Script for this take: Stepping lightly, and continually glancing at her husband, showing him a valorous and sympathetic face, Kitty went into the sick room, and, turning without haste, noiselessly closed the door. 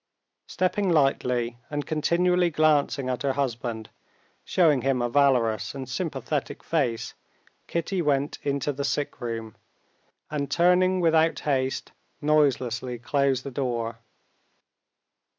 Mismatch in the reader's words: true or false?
false